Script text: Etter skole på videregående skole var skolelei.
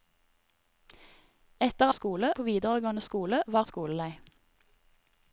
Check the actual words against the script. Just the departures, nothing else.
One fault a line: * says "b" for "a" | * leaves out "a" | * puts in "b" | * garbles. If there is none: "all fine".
all fine